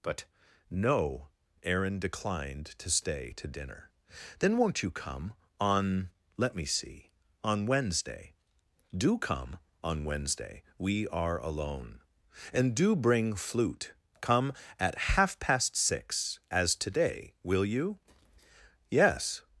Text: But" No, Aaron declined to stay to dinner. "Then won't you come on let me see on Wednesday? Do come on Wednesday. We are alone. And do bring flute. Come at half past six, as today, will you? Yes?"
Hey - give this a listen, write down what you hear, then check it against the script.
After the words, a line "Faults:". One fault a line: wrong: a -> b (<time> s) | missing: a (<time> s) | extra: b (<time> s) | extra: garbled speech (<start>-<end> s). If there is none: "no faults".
But" No, Aaron declined to stay to dinner. "Then won't you come on let me see on Wednesday? Do come on Wednesday. We are alone. And do bring flute. Come at half past six, as today, will you? Yes?"
Faults:
no faults